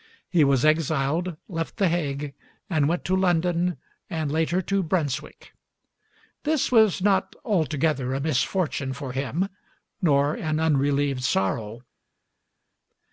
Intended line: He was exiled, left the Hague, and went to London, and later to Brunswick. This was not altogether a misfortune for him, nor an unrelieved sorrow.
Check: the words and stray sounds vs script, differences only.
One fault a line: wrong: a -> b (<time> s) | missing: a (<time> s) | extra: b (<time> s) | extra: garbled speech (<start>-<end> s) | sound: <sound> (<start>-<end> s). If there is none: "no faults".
no faults